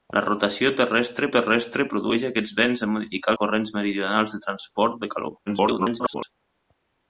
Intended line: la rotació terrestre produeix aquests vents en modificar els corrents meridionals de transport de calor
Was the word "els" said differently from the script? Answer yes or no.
yes